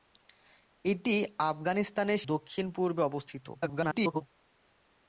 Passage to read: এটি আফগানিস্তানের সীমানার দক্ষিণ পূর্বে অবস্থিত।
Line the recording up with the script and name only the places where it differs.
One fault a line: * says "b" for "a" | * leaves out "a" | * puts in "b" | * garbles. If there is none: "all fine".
* leaves out "সীমানার"
* garbles